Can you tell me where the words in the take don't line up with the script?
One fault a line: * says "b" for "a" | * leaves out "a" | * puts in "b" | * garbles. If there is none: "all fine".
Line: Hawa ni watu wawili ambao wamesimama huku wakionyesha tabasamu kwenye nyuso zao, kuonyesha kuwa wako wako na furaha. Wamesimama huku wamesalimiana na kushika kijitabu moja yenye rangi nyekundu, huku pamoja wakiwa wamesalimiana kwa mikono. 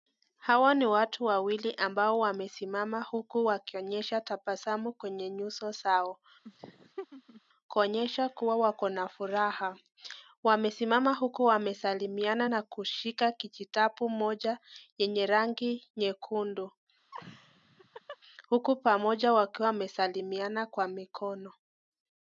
* leaves out "wako"